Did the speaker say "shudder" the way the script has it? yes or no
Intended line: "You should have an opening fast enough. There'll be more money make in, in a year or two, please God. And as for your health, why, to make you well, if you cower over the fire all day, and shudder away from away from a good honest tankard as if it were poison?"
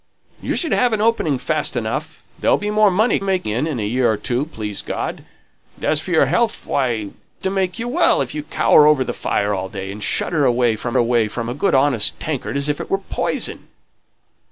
yes